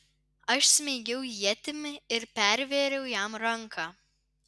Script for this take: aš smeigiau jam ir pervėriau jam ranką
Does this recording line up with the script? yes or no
no